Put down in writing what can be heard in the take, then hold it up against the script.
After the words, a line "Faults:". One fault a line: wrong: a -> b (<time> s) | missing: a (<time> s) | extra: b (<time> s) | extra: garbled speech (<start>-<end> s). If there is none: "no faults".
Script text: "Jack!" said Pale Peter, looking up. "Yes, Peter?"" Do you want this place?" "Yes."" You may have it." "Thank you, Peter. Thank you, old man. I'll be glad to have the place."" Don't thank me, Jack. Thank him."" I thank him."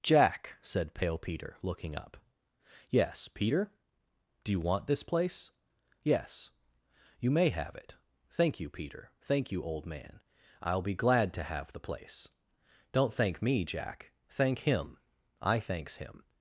"Jack!" said Pale Peter, looking up. "Yes, Peter?"" Do you want this place?" "Yes."" You may have it." "Thank you, Peter. Thank you, old man. I'll be glad to have the place."" Don't thank me, Jack. Thank him."" I thanks him."
Faults:
wrong: thank -> thanks (15.6 s)